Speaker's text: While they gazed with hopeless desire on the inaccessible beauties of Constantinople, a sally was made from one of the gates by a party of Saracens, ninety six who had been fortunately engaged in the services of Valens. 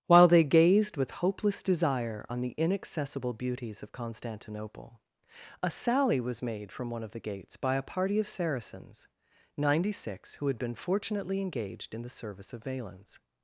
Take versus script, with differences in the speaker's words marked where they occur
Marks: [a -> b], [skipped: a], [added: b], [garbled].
While they gazed with hopeless desire on the inaccessible beauties of Constantinople, a sally was made from one of the gates by a party of Saracens, ninety six who had been fortunately engaged in the [services -> service] of Valens.